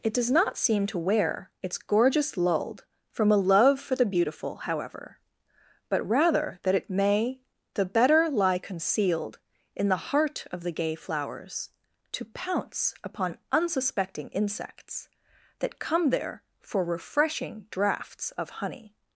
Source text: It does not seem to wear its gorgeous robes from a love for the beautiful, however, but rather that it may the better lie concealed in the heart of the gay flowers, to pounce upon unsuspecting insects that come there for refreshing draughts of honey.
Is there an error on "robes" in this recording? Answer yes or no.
yes